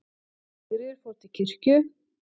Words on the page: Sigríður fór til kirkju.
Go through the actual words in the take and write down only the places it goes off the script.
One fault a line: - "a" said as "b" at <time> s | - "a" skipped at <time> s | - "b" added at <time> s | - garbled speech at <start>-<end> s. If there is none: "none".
none